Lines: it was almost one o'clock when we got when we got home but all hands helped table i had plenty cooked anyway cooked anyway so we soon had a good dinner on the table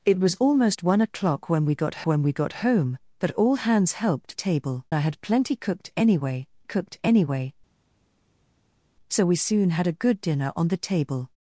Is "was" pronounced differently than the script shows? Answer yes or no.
no